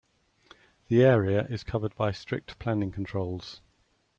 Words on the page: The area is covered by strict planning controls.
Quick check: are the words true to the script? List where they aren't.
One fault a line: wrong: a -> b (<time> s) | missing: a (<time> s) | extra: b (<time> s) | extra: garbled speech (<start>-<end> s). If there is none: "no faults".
no faults